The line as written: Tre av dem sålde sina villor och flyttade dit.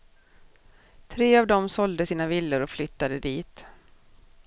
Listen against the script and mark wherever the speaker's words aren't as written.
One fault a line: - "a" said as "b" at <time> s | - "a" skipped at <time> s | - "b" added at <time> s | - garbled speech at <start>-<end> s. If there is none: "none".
none